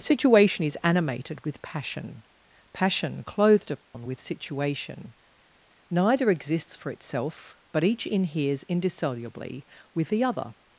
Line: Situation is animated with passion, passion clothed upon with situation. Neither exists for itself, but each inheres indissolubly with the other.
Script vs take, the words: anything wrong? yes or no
no